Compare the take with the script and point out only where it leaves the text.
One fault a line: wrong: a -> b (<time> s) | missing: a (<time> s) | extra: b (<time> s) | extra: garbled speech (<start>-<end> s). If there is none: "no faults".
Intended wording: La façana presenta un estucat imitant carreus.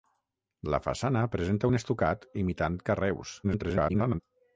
extra: garbled speech (3.4-4.2 s)